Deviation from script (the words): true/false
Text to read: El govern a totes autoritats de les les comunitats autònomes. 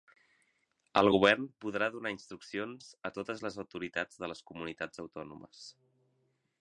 true